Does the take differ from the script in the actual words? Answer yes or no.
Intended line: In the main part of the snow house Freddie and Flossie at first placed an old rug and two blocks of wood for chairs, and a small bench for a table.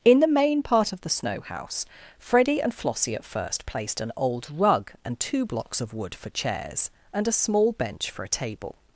no